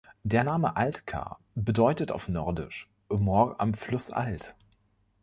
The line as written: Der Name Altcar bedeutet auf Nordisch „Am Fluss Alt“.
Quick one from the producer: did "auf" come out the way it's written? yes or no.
yes